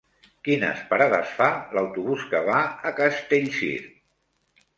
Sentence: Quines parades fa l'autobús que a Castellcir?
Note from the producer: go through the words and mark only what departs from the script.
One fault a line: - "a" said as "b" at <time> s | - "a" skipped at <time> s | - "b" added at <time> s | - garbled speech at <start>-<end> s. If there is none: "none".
- "va" added at 2.5 s